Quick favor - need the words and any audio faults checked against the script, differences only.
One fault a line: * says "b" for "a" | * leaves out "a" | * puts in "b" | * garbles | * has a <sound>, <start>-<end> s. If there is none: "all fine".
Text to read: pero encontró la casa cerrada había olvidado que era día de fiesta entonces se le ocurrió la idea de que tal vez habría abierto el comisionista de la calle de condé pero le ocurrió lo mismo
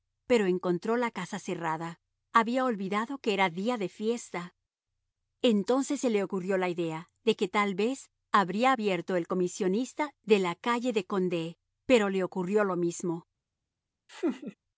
* has a laugh, 14.1-14.6 s